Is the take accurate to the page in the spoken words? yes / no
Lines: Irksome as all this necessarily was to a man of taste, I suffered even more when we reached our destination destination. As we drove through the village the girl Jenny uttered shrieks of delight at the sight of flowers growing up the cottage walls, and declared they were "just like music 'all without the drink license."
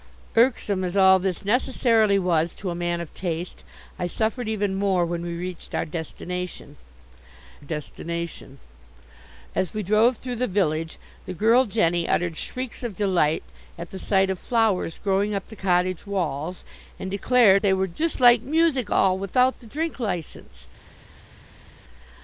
yes